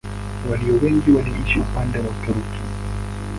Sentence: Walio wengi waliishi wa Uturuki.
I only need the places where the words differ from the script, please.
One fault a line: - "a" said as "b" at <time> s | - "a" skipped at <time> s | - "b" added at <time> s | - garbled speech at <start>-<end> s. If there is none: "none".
- "upande" added at 1.6 s